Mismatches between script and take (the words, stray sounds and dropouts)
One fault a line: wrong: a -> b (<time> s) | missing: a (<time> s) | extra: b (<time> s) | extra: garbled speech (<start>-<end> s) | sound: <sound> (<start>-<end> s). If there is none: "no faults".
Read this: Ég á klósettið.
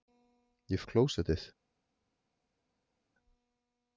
no faults